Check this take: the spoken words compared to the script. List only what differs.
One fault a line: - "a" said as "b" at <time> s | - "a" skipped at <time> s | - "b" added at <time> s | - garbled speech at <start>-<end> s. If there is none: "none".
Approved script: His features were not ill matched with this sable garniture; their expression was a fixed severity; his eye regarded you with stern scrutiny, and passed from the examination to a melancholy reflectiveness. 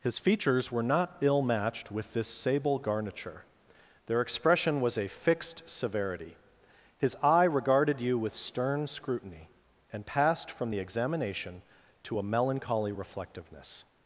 none